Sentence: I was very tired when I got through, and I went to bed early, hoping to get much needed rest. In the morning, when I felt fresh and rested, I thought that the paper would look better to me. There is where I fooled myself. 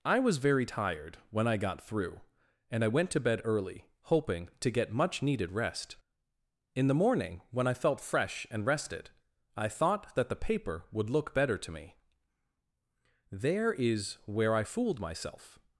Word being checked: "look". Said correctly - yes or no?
yes